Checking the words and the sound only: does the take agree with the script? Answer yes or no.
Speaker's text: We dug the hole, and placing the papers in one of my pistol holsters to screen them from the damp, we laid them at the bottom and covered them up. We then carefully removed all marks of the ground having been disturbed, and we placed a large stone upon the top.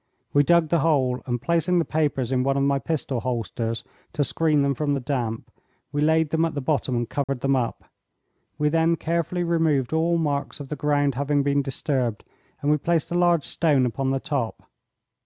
no